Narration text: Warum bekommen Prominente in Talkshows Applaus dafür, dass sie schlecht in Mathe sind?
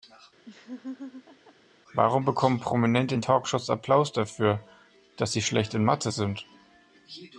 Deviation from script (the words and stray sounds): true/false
true